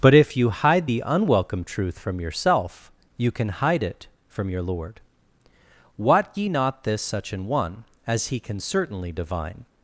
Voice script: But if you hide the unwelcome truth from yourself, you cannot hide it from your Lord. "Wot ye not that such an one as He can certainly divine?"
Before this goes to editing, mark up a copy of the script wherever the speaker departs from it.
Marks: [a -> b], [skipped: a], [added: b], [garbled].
But if you hide the unwelcome truth from yourself, you [cannot -> can] hide it from your Lord. "Wot ye not [that -> this] such an one as He can certainly divine?"